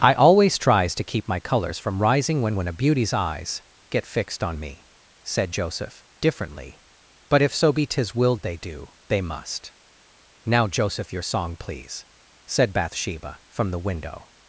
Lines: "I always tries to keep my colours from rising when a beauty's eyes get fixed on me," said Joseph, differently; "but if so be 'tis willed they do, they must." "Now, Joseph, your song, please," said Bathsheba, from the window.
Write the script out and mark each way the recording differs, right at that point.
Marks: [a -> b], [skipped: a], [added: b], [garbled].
"I always tries to keep my colours from rising when [added: when] a beauty's eyes get fixed on me," said Joseph, differently; "but if so be 'tis willed they do, they must." "Now, Joseph, your song, please," said Bathsheba, from the window.